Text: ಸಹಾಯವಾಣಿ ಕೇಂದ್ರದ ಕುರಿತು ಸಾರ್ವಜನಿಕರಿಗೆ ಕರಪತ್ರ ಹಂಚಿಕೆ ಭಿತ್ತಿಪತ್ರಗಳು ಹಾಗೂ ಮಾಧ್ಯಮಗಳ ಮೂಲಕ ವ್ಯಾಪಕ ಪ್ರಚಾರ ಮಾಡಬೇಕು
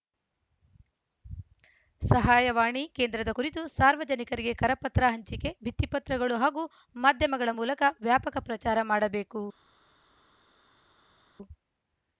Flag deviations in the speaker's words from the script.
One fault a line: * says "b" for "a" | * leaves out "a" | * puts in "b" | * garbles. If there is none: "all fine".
all fine